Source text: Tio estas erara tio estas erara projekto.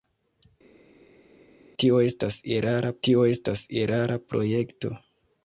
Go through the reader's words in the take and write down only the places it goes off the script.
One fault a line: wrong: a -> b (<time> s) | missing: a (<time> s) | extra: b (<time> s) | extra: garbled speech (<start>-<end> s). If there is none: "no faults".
no faults